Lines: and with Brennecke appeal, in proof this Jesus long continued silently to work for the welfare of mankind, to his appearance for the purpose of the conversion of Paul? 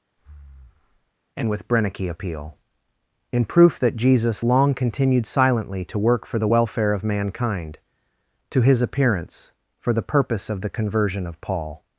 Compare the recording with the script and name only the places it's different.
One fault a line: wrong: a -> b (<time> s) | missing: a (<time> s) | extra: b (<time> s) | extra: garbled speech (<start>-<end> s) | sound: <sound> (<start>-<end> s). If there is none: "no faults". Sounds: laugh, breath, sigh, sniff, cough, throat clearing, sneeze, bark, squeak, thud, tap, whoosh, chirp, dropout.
sound: breath (0.2-1.1 s)
wrong: this -> that (3.8 s)